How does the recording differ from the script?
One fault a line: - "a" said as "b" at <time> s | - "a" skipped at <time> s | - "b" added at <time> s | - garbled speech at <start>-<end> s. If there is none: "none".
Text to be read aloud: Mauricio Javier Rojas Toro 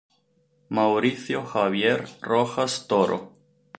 none